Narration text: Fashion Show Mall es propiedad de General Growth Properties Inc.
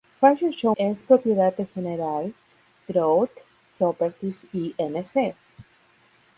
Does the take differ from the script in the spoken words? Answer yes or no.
yes